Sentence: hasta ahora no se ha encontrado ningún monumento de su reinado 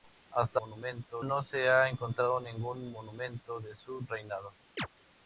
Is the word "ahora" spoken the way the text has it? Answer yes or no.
no